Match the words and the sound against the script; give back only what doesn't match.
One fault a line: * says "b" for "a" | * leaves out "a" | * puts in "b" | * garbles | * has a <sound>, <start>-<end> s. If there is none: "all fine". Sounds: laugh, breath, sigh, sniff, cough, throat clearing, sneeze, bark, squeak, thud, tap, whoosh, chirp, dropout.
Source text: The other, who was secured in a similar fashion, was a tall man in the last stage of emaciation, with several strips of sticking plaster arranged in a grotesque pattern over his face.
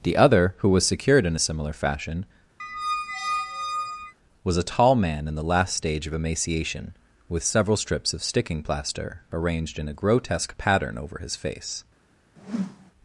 * has a squeak, 2.6-4.1 s
* has a whoosh, 12.4-12.9 s